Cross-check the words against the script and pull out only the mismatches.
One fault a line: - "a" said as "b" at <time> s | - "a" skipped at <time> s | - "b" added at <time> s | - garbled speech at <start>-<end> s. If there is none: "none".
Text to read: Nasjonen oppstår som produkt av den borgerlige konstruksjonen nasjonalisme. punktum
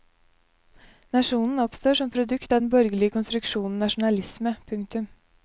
none